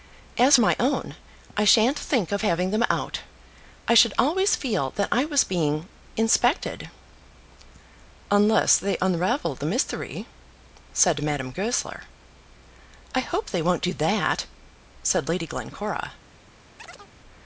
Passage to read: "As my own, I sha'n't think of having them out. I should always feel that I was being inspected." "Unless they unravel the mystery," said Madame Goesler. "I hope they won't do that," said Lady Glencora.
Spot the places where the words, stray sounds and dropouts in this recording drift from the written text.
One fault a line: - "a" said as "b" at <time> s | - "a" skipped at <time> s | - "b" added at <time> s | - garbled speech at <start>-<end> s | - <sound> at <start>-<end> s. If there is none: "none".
- chirp at 16.8-17.1 s